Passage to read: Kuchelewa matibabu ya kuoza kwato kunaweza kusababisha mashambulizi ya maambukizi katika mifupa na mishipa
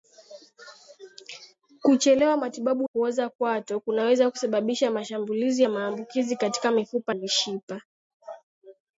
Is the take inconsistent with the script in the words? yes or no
yes